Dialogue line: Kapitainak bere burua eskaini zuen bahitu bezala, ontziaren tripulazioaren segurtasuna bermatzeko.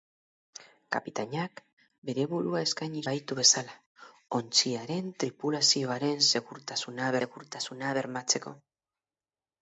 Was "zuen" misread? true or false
true